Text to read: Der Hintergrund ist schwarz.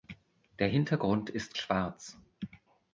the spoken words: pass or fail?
pass